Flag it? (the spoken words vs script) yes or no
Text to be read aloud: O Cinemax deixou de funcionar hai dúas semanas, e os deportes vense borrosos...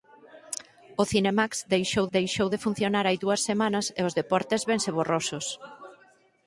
yes